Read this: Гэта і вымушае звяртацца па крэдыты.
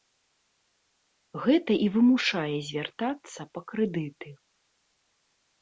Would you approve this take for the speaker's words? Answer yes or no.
yes